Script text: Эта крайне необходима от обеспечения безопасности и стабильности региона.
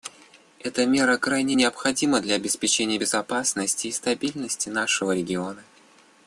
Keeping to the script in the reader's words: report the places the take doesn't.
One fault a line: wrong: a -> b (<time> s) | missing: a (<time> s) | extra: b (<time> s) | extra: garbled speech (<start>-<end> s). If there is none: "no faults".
extra: мера (0.9 s)
wrong: от -> для (2.2 s)
extra: нашего (4.7 s)